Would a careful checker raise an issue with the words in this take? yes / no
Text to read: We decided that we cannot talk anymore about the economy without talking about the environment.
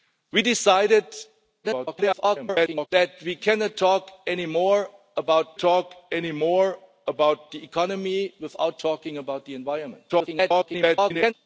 yes